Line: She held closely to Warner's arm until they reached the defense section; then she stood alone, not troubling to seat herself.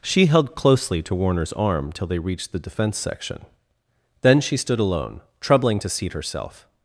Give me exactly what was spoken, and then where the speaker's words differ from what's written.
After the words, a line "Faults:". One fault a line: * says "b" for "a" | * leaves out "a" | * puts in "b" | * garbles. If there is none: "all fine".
She held closely to Warner's arm till they reached the defense section; then she stood alone, troubling to seat herself.
Faults:
* says "till" for "until"
* leaves out "not"